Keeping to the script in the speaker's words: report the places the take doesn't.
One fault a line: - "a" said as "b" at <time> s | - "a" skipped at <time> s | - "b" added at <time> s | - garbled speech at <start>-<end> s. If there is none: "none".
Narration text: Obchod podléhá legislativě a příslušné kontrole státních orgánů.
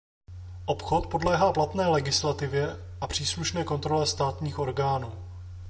- "platné" added at 1.5 s